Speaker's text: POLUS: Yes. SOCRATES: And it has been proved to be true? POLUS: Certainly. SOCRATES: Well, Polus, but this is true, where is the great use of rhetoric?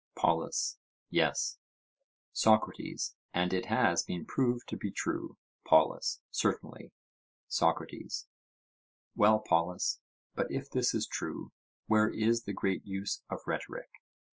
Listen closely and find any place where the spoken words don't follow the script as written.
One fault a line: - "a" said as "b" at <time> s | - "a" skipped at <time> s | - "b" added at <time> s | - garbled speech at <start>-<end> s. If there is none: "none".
- "if" added at 10.5 s